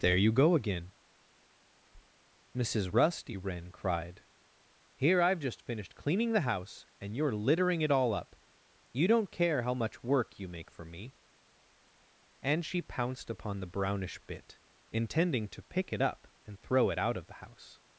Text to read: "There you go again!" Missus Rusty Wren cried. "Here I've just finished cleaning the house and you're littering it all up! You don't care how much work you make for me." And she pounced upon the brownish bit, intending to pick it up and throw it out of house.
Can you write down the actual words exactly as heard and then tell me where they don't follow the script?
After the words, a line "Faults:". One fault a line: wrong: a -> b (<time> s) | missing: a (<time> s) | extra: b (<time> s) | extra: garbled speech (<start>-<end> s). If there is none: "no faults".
"There you go again!" Missus Rusty Wren cried. "Here I've just finished cleaning the house and you're littering it all up! You don't care how much work you make for me." And she pounced upon the brownish bit, intending to pick it up and throw it out of the house.
Faults:
extra: the (17.3 s)